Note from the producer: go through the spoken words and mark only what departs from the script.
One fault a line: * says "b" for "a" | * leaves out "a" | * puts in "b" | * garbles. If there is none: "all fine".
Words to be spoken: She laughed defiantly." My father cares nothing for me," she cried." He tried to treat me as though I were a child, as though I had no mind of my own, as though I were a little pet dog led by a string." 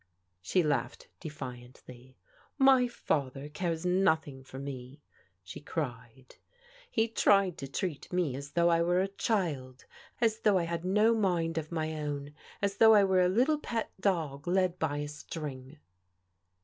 all fine